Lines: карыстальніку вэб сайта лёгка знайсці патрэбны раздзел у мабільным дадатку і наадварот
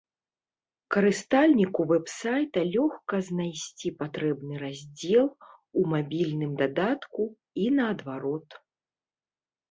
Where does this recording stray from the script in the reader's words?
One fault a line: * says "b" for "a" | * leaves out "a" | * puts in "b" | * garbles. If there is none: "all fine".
all fine